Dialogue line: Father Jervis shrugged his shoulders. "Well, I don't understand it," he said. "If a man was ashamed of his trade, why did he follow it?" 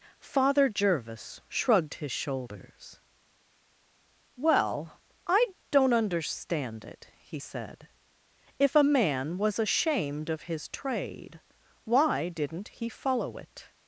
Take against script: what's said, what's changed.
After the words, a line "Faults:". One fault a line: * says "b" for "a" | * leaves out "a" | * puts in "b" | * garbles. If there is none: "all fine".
Father Jervis shrugged his shoulders. "Well, I don't understand it," he said. "If a man was ashamed of his trade, why didn't he follow it?"
Faults:
* says "didn't" for "did"